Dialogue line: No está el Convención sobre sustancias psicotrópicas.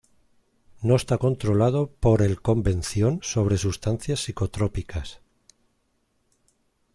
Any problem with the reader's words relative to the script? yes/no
yes